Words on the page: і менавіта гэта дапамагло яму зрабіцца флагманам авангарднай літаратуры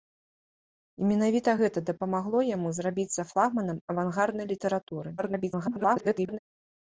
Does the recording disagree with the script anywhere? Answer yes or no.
yes